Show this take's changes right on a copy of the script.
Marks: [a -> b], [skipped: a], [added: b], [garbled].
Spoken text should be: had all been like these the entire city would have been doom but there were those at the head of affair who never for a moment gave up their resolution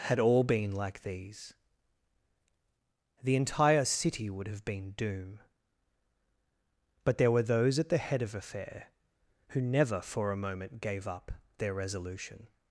had all been like these the entire city would have been doom but there were those at the head of affair who never for a moment gave up their resolution